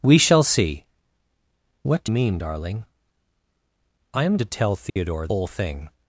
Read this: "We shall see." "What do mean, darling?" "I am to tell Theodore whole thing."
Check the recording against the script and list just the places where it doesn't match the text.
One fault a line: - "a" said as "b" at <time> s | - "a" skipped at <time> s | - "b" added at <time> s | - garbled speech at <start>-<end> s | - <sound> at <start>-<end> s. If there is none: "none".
- dropout at 4.9-5.0 s